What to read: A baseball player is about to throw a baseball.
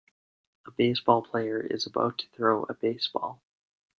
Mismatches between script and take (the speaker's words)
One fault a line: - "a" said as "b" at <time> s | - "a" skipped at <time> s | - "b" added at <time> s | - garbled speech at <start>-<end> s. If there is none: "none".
none